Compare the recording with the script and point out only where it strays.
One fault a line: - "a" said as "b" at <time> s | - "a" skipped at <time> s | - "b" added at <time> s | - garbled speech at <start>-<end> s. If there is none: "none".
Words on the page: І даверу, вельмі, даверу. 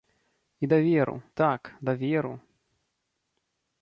- "вельмі" said as "так" at 1.3 s